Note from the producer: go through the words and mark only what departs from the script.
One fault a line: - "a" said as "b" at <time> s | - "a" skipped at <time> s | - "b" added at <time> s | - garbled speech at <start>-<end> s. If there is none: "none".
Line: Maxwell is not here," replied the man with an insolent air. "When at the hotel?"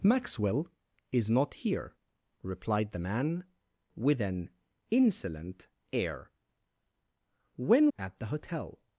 none